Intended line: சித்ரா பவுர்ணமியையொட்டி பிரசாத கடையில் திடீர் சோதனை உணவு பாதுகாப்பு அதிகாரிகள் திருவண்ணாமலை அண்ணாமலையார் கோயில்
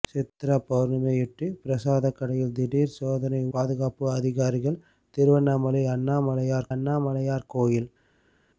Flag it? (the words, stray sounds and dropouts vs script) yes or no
yes